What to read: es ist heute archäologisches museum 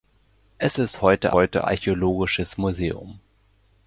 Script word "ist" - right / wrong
right